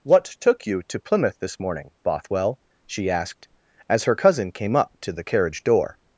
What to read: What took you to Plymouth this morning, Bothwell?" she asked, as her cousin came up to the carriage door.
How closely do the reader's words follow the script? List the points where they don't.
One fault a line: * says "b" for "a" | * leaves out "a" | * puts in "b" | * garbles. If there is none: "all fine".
all fine